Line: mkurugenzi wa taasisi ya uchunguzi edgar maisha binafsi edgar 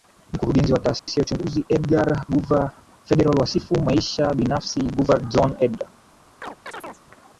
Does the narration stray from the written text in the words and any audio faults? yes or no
yes